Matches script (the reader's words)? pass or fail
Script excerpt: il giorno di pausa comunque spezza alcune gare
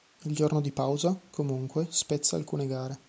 pass